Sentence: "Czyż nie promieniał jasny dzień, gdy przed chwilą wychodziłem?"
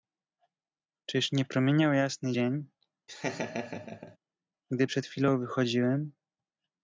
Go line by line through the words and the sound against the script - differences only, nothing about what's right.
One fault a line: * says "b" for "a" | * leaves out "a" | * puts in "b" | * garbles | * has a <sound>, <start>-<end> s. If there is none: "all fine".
* has a laugh, 3.1-4.2 s